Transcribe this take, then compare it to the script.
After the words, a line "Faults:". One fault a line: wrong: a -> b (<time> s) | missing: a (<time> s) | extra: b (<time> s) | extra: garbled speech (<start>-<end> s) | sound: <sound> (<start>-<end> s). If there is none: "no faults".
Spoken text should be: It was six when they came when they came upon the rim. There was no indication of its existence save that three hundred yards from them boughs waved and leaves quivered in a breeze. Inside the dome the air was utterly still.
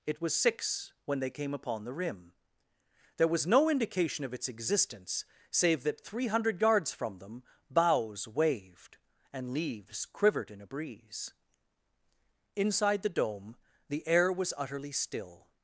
It was six when they came upon the rim. There was no indication of its existence save that three hundred yards from them boughs waved and leaves quivered in a breeze. Inside the dome the air was utterly still.
Faults:
missing: when they came (1.5 s)